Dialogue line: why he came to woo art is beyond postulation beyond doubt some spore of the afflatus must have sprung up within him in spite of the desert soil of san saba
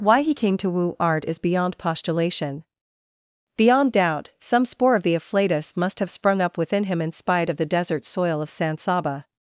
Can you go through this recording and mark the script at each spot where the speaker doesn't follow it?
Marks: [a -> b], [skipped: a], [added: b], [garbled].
why he came to woo art is beyond postulation beyond doubt some spore of the afflatus must have sprung up within him in spite of the desert soil of san saba